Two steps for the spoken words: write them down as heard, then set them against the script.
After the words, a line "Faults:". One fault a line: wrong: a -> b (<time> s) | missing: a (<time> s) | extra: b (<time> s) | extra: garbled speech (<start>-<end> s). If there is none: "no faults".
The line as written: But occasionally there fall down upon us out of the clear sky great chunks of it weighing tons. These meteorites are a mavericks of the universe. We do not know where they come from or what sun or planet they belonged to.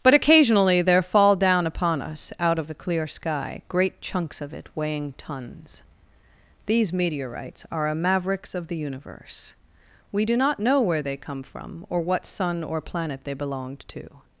But occasionally there fall down upon us out of the clear sky great chunks of it weighing tons. These meteorites are a mavericks of the universe. We do not know where they come from or what sun or planet they belonged to.
Faults:
no faults